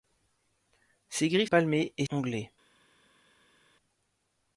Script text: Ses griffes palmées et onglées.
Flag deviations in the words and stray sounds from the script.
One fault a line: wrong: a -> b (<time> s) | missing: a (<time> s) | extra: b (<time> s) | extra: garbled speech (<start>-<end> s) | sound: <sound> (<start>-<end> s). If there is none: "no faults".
no faults